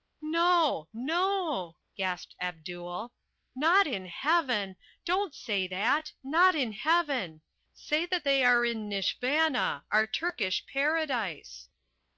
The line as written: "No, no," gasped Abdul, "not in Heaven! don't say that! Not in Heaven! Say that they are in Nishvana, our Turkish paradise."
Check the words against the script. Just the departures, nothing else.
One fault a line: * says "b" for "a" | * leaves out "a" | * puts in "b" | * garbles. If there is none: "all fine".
all fine